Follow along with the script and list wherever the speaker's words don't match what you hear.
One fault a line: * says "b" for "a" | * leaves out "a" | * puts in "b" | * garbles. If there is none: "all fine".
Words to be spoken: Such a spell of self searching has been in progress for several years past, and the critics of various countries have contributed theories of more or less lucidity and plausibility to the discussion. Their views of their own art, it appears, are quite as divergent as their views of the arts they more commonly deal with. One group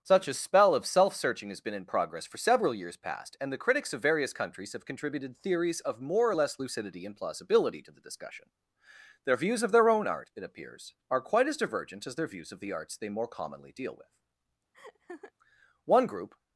all fine